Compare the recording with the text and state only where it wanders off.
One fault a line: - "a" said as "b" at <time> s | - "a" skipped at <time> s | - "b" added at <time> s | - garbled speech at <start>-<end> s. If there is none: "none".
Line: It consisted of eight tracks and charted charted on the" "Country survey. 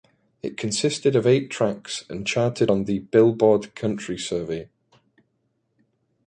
- "charted" skipped at 2.7 s
- "Billboard" added at 3.0 s